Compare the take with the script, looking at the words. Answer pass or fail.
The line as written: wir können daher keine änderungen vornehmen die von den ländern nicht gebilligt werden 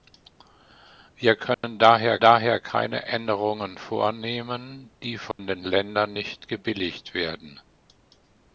fail